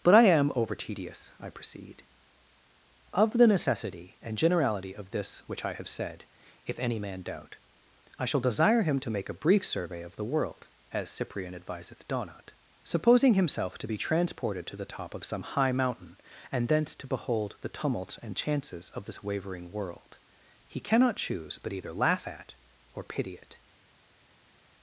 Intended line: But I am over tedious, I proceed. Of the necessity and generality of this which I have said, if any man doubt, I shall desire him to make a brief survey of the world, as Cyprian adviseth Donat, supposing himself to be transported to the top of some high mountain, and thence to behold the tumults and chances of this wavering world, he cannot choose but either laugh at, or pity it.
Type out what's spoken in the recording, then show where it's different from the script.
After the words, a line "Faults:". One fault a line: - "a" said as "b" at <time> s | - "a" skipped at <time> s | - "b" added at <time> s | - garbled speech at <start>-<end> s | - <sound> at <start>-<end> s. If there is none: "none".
But I am over tedious, I proceed. Of the necessity and generality of this which I have said, if any man doubt, I shall desire him to make a brief survey of the world, as Cyprian adviseth Donat, supposing himself to be transported to the top of some high mountain, and thence to behold the tumults and chances of this wavering world, he cannot choose but either laugh at, or pity it.
Faults:
none